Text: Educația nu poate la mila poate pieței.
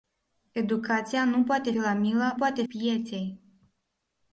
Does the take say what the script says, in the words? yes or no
yes